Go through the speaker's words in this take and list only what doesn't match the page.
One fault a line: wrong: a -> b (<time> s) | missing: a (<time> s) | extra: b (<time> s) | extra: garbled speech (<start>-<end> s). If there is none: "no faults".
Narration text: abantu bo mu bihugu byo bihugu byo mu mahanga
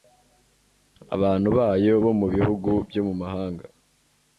extra: bayo (1.6 s)
missing: bihugu byo (3.0 s)